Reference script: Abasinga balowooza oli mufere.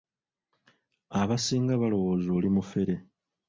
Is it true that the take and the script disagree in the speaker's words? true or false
false